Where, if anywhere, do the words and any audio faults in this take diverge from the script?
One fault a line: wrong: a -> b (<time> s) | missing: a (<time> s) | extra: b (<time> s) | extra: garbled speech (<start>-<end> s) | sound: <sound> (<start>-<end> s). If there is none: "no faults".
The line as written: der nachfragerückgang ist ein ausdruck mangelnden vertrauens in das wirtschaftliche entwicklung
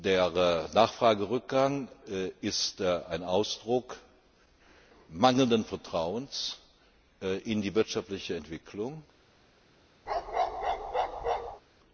wrong: das -> die (7.6 s)
sound: bark (10.1-11.6 s)